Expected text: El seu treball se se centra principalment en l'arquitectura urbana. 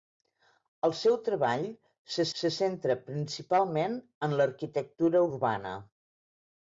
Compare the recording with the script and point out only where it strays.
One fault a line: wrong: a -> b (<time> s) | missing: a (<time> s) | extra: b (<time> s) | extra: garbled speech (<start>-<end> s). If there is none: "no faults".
no faults